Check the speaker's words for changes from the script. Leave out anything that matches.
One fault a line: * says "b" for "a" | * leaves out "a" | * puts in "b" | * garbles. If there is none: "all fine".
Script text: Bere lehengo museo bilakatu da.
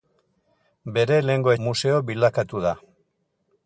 all fine